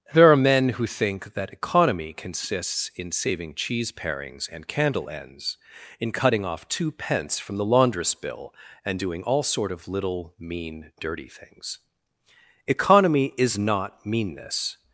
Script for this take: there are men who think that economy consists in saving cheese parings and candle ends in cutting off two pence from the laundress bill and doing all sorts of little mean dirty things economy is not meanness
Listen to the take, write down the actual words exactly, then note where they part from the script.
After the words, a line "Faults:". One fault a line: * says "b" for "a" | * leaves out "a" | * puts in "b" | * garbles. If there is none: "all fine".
there are men who think that economy consists in saving cheese parings and candle ends in cutting off two pence from the laundress bill and doing all sort of little mean dirty things economy is not meanness
Faults:
* says "sort" for "sorts"